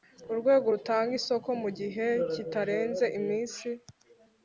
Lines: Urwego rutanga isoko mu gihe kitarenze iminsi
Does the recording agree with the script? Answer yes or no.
yes